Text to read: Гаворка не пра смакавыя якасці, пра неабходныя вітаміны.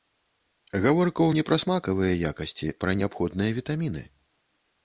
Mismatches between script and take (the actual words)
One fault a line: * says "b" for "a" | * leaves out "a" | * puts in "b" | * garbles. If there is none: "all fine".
all fine